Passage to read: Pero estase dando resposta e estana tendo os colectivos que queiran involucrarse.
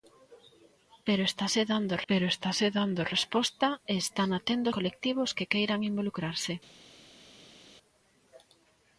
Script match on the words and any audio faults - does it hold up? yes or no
no